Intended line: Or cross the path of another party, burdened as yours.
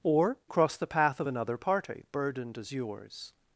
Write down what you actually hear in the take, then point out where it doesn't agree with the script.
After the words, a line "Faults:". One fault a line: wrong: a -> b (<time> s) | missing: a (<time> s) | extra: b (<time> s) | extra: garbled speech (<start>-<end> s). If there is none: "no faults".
Or cross the path of another party, burdened as yours.
Faults:
no faults